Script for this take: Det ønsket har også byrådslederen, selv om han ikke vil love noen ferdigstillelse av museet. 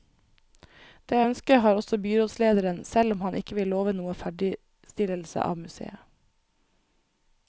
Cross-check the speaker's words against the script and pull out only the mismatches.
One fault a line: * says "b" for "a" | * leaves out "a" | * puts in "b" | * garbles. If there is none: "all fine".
all fine